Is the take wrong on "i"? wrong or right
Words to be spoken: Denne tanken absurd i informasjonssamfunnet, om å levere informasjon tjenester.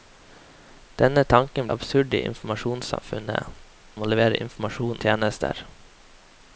right